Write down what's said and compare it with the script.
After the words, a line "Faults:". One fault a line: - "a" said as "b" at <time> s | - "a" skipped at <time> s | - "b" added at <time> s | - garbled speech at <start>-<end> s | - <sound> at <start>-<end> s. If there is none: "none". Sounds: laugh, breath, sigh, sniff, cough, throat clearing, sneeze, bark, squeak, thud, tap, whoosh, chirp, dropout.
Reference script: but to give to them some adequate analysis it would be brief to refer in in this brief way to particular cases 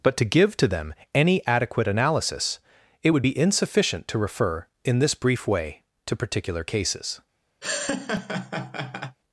but to give to them any adequate analysis it would be insufficient to refer in this brief way to particular cases
Faults:
- "some" said as "any" at 1.1 s
- "brief" said as "insufficient" at 3.4 s
- "in" skipped at 5.0 s
- laugh at 7.6-9.2 s